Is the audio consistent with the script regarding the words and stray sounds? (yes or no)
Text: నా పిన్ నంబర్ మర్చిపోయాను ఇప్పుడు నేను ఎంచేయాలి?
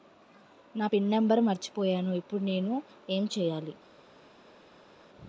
yes